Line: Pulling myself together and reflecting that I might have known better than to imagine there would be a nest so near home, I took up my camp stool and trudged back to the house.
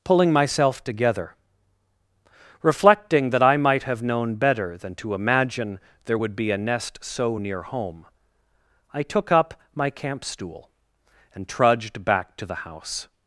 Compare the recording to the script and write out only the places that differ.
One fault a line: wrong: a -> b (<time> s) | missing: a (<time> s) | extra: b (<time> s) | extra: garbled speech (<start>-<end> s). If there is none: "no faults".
missing: and (1.4 s)